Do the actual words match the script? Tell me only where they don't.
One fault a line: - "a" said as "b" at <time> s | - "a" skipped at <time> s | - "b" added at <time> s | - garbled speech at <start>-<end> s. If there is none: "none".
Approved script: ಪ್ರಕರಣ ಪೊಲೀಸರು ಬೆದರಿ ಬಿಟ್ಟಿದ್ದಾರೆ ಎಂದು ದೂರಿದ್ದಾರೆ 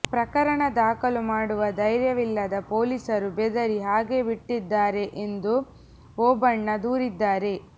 - "ದಾಖಲು ಮಾಡುವ ಧೈರ್ಯವಿಲ್ಲದ" added at 0.8 s
- "ಹಾಗೇ" added at 3.8 s
- "ಓಬಣ್ಣ" added at 6.2 s